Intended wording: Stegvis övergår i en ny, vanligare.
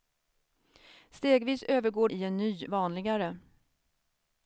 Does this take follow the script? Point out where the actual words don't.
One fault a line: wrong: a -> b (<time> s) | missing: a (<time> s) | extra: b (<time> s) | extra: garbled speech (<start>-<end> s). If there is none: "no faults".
no faults